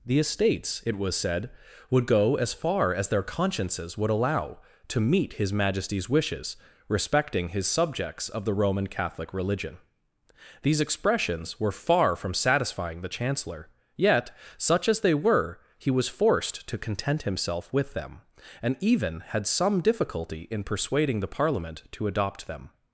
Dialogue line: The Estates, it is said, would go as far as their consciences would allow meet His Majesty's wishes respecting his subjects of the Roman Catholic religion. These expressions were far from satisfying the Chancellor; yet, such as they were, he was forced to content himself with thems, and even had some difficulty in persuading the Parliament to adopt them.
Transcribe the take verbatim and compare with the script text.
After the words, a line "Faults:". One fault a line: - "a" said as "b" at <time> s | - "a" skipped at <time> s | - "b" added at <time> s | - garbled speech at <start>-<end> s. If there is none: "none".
The Estates, it was said, would go as far as their consciences would allow to meet His Majesty's wishes respecting his subjects of the Roman Catholic religion. These expressions were far from satisfying the Chancellor; yet, such as they were, he was forced to content himself with them, and even had some difficulty in persuading the Parliament to adopt them.
Faults:
- "is" said as "was" at 1.0 s
- "to" added at 4.9 s
- "thems" said as "them" at 17.9 s